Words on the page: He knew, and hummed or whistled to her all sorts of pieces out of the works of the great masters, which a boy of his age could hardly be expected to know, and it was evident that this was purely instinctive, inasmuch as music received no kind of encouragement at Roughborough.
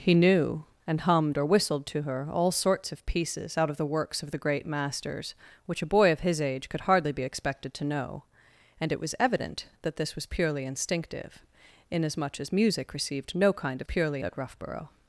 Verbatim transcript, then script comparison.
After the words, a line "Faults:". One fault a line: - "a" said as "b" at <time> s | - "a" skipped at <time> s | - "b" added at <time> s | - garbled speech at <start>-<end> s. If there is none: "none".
He knew, and hummed or whistled to her all sorts of pieces out of the works of the great masters, which a boy of his age could hardly be expected to know, and it was evident that this was purely instinctive, inasmuch as music received no kind of purely at Roughborough.
Faults:
- "encouragement" said as "purely" at 13.8 s